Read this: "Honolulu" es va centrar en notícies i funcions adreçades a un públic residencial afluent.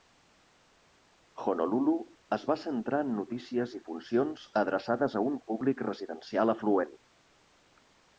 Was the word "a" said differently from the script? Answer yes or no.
no